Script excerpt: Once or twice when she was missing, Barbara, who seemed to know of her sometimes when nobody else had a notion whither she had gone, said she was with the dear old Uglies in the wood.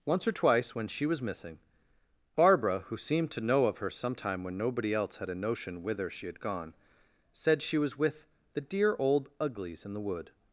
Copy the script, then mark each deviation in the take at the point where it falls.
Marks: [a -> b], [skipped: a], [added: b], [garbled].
Once or twice when she was missing, Barbara, who seemed to know of her [sometimes -> sometime] when nobody else had a notion whither she had gone, said she was with the dear old Uglies in the wood.